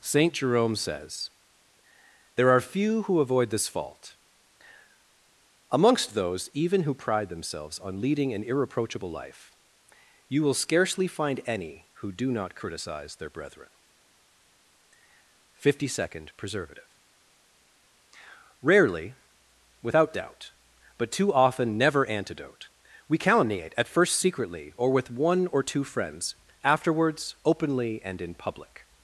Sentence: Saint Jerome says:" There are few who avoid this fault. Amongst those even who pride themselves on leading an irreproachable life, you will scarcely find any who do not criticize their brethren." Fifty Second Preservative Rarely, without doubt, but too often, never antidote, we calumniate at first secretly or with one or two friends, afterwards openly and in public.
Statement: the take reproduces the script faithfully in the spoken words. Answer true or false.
true